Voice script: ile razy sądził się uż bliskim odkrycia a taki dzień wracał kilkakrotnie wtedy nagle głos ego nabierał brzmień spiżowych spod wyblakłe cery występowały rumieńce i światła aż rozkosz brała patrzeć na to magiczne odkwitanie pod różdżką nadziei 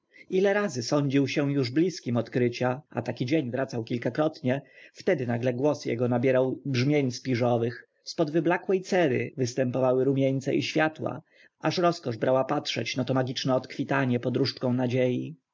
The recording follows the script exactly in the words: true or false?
true